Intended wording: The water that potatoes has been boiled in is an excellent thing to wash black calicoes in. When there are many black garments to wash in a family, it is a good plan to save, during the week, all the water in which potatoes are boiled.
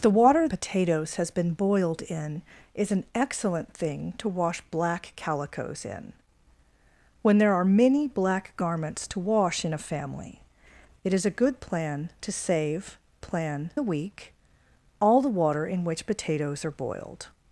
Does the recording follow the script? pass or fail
fail